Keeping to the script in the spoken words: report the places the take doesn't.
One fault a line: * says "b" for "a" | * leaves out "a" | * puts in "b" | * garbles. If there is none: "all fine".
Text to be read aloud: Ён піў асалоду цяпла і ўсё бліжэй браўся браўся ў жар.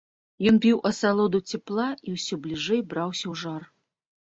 * leaves out "браўся"